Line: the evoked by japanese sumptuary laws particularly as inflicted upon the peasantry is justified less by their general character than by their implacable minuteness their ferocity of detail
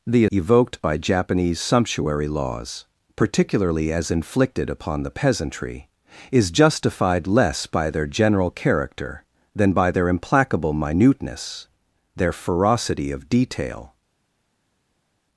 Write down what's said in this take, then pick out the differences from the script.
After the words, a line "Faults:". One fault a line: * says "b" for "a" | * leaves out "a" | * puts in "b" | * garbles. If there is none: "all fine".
the evoked by japanese sumptuary laws particularly as inflicted upon the peasantry is justified less by their general character than by their implacable minuteness their ferocity of detail
Faults:
all fine